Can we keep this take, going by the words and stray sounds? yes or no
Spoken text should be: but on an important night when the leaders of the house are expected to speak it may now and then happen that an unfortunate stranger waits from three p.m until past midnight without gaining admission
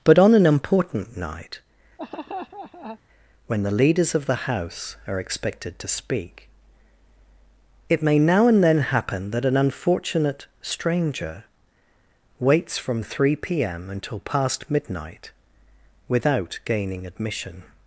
no